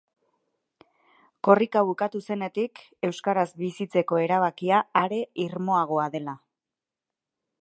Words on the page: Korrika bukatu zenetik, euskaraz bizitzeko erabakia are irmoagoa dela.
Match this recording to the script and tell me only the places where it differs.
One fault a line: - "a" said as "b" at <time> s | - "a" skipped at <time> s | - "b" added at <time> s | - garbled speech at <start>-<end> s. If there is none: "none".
none